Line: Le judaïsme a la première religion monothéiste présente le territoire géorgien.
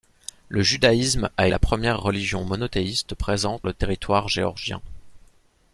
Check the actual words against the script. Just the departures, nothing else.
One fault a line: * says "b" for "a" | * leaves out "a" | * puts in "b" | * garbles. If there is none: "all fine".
all fine